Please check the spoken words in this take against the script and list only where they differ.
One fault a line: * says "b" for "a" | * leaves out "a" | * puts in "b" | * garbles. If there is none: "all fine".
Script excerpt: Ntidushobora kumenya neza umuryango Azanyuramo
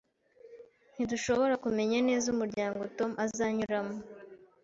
* puts in "Tom"